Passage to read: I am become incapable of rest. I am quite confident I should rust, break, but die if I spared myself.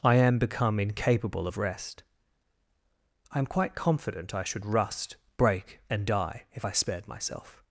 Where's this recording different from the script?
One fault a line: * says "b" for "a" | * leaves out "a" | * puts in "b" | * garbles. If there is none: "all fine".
* says "and" for "but"